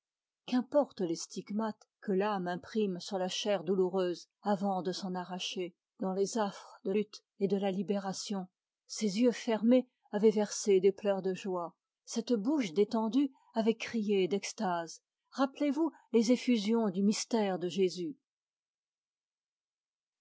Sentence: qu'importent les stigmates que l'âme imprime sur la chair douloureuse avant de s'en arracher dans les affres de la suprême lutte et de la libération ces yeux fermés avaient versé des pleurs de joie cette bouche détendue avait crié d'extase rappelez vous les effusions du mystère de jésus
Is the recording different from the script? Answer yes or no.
yes